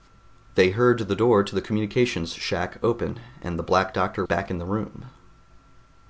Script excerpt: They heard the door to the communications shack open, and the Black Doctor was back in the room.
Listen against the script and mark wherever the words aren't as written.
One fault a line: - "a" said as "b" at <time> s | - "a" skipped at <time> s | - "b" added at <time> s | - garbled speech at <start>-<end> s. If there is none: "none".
- "was" skipped at 4.2 s